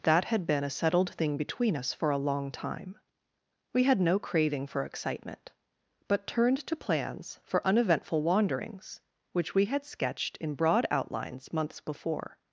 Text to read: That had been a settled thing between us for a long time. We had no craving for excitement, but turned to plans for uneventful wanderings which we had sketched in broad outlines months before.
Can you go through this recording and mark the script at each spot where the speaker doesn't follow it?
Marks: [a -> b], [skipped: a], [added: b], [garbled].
That had been a settled thing between us for a long time. We had no craving for excitement, but turned to plans for uneventful wanderings which we had sketched in broad outlines months before.